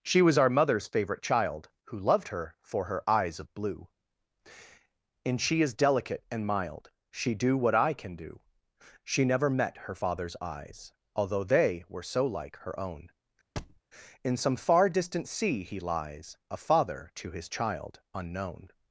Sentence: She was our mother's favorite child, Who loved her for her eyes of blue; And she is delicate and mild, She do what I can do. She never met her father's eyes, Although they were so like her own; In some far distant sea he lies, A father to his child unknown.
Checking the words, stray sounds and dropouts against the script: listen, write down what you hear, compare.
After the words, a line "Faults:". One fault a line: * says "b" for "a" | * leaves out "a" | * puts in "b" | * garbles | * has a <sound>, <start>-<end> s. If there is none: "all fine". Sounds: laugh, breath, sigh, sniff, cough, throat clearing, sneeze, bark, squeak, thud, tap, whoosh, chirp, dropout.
She was our mother's favorite child, Who loved her for her eyes of blue; And she is delicate and mild, She do what I can do. She never met her father's eyes, Although they were so like her own; In some far distant sea he lies, A father to his child unknown.
Faults:
* has a thud, 13.6-13.8 s